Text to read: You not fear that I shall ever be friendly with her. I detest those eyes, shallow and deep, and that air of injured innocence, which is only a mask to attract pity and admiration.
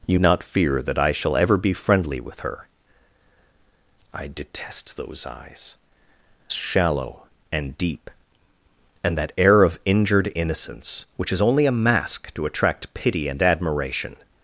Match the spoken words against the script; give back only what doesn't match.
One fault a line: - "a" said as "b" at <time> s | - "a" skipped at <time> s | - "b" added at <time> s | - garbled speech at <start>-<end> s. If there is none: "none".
none